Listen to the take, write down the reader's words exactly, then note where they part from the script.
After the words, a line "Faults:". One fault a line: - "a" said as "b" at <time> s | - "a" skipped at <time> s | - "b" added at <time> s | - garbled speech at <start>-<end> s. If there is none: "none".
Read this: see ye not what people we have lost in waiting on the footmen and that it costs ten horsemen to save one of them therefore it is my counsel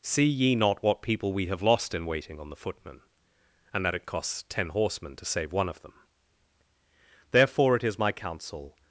see ye not what people we have lost in waiting on the footmen and that it costs ten horsemen to save one of them therefore it is my counsel
Faults:
none